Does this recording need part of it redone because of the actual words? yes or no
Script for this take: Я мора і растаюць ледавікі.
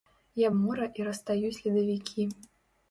no